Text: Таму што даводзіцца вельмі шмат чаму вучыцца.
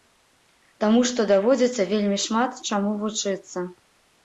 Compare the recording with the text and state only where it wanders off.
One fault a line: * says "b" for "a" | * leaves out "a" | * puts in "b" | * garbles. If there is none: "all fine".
all fine